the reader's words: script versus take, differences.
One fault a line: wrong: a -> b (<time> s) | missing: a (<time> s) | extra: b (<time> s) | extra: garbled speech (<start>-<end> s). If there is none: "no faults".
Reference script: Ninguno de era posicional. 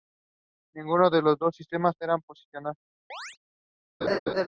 extra: los dos sistemas (1.2 s)